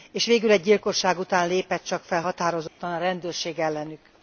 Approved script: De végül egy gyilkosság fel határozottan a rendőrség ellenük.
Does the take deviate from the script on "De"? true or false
true